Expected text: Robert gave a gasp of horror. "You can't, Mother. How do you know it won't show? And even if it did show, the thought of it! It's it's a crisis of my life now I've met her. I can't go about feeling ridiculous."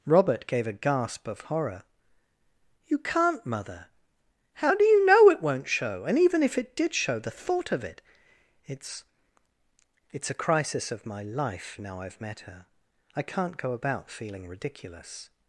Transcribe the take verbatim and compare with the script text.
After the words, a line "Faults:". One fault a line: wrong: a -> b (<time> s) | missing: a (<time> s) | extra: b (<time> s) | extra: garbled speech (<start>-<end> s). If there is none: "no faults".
Robert gave a gasp of horror. "You can't, Mother. How do you know it won't show? And even if it did show, the thought of it! It's it's a crisis of my life now I've met her. I can't go about feeling ridiculous."
Faults:
no faults